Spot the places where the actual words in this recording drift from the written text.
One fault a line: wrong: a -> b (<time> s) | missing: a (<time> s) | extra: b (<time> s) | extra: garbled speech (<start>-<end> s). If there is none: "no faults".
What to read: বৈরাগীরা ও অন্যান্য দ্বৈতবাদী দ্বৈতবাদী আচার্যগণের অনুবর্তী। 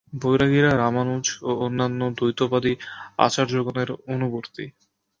extra: রামানুজ (0.8 s)
missing: দ্বৈতবাদী (2.7 s)